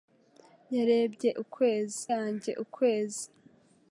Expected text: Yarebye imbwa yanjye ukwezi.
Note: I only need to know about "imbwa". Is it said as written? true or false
false